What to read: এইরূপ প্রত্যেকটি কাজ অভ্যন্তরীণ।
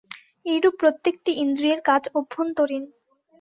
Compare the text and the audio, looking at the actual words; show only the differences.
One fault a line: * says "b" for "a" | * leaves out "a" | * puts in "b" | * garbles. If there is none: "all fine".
* puts in "ইন্দ্রিয়ের"